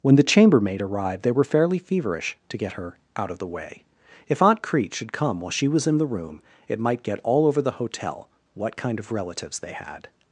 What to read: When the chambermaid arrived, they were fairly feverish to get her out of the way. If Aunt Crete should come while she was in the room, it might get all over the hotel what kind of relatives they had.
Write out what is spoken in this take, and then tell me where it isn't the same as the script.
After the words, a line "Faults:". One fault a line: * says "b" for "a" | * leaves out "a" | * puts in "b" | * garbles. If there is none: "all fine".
When the chambermaid arrived, they were fairly feverish to get her out of the way. If Aunt Crete should come while she was in the room, it might get all over the hotel what kind of relatives they had.
Faults:
all fine